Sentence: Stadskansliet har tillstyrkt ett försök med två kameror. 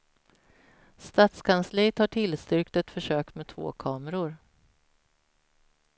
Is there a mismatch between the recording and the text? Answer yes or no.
no